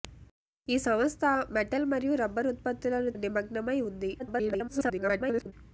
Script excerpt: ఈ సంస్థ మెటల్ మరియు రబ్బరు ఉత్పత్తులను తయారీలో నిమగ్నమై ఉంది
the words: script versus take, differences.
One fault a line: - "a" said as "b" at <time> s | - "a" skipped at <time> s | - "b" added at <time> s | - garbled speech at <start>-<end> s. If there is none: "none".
- "తయారీలో" skipped at 3.1 s
- garbled speech at 4.2-5.5 s